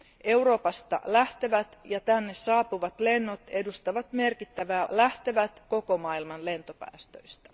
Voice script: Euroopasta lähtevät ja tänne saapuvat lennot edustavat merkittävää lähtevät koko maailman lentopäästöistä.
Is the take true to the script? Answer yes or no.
yes